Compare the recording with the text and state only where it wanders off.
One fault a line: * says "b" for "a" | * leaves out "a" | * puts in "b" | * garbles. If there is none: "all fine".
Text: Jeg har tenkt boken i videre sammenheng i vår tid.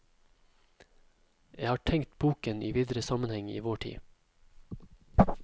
all fine